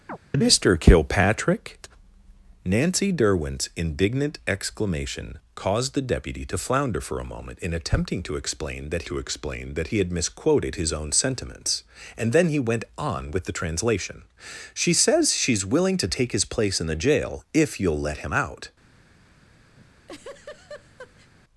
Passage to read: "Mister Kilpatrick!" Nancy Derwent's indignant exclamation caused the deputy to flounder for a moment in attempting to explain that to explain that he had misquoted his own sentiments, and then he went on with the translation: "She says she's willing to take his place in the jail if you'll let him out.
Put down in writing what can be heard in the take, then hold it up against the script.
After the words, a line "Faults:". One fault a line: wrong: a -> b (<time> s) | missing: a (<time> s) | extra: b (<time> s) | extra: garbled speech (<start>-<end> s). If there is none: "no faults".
"Mister Kilpatrick!" Nancy Derwent's indignant exclamation caused the deputy to flounder for a moment in attempting to explain that to explain that he had misquoted his own sentiments, and then he went on with the translation: "She says she's willing to take his place in the jail if you'll let him out.
Faults:
no faults